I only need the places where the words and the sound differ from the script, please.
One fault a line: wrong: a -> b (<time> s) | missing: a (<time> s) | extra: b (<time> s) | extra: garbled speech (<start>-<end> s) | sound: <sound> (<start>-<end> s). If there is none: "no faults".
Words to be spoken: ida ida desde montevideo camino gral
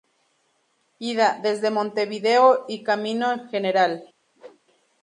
missing: ida (1.4 s)
extra: y (2.7 s)
sound: whoosh (4.4-4.6 s)